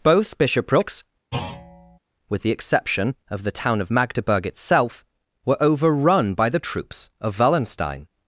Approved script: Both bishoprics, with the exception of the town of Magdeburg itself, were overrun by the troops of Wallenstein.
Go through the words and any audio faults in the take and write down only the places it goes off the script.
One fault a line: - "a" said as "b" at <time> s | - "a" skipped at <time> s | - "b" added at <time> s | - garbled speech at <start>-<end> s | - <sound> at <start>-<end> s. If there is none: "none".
- thud at 1.3-2.0 s